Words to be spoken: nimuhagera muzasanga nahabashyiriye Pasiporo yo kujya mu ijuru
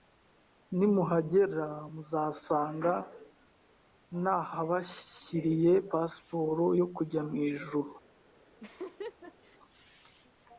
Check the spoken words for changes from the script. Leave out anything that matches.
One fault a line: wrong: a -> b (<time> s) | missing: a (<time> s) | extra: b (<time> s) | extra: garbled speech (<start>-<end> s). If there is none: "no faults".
no faults